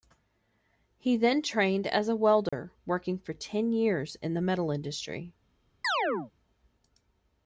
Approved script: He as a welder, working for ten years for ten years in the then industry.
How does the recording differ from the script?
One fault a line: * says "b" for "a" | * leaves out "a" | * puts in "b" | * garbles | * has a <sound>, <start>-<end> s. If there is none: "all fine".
* puts in "then trained"
* has a dropout, 2.5-2.5 s
* leaves out "for ten years"
* says "metal" for "then"
* has a chirp, 5.8-6.3 s